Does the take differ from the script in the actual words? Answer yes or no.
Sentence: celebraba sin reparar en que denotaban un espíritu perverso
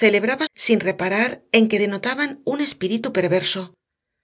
no